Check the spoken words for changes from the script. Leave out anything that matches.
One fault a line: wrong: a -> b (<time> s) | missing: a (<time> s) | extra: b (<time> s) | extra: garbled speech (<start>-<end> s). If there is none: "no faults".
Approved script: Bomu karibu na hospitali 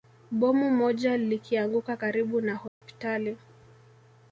extra: moja likianguka (0.7 s)